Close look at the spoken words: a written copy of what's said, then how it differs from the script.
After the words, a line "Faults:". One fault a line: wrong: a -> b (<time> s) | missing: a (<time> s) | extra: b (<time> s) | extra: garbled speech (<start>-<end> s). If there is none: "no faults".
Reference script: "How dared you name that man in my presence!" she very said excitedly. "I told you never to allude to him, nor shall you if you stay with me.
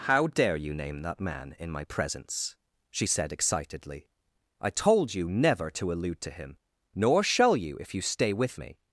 "How dare you name that man in my presence!" she said excitedly. "I told you never to allude to him, nor shall you if you stay with me.
Faults:
wrong: dared -> dare (0.2 s)
missing: very (3.1 s)